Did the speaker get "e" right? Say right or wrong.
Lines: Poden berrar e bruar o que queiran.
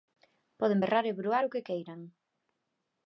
right